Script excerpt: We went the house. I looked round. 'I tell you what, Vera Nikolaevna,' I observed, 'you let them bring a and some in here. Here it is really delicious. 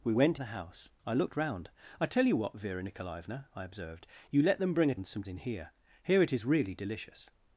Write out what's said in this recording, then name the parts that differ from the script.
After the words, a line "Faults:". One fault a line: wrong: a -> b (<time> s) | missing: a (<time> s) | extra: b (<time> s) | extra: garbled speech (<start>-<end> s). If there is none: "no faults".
We went the house. I looked round. 'I tell you what, Vera Nikolaevna,' I observed, 'you let them bring a and some in here. Here it is really delicious.
Faults:
no faults